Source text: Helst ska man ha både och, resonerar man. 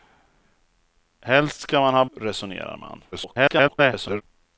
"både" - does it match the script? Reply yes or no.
no